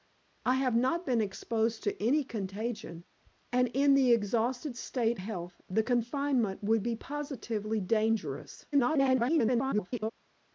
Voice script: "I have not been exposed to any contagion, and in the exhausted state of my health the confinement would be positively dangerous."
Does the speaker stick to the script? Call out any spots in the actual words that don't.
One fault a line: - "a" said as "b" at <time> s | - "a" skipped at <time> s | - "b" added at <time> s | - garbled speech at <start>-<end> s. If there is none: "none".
- "of my" skipped at 5.2 s
- garbled speech at 8.7-10.1 s